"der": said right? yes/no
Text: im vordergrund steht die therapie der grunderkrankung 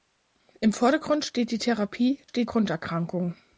no